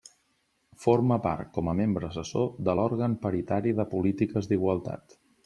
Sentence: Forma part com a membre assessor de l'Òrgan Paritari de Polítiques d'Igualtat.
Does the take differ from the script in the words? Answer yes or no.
no